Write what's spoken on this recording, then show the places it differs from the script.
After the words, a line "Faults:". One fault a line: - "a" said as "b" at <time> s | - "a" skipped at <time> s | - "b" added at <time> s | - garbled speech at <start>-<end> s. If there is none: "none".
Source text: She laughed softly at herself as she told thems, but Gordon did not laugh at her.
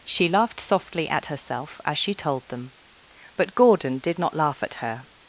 She laughed softly at herself as she told them, but Gordon did not laugh at her.
Faults:
- "thems" said as "them" at 2.5 s